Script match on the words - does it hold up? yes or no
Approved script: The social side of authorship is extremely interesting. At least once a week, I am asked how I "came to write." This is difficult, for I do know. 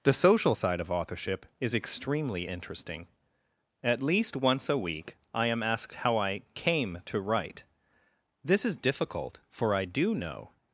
yes